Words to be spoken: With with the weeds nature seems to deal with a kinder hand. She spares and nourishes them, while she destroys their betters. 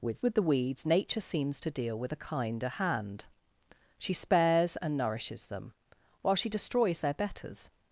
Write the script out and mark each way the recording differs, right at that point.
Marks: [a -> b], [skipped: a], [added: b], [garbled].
With with the weeds nature seems to deal with a kinder hand. She spares and nourishes them, while she destroys their betters.